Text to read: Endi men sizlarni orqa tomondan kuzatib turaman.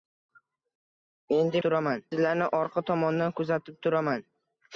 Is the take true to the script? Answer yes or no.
no